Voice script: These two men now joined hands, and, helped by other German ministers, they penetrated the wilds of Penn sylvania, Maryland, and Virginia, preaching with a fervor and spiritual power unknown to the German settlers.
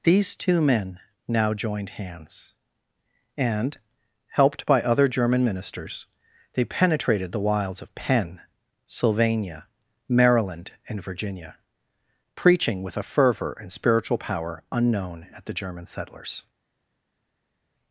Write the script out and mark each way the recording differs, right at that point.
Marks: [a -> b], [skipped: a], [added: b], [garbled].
These two men now joined hands, and, helped by other German ministers, they penetrated the wilds of Penn sylvania, Maryland, and Virginia, preaching with a fervor and spiritual power unknown [to -> at] the German settlers.